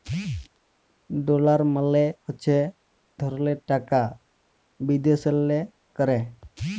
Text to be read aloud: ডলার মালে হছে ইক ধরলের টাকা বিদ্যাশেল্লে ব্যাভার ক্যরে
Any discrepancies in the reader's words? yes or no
yes